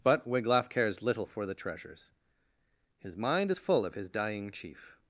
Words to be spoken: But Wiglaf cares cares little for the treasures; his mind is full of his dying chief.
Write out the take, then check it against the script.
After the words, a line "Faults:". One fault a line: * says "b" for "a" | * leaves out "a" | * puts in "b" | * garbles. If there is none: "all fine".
But Wiglaf cares little for the treasures; his mind is full of his dying chief.
Faults:
* leaves out "cares"